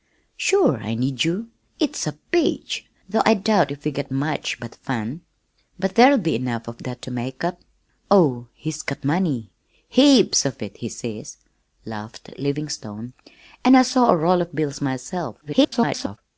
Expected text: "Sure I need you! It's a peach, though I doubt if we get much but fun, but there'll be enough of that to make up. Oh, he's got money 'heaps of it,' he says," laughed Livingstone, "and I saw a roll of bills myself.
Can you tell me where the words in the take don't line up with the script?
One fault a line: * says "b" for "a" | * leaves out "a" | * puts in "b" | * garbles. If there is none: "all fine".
* garbles